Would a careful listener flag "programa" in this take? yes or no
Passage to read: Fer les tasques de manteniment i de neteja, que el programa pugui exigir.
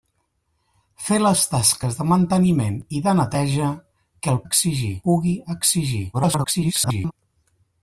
yes